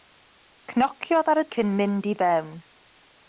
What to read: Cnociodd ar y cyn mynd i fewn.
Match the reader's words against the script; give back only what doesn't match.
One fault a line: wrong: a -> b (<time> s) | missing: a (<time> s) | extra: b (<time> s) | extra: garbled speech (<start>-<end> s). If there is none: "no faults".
no faults